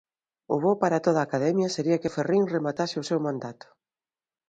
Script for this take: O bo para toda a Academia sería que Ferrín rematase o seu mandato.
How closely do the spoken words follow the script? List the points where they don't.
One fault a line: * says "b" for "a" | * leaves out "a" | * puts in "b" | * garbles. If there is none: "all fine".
all fine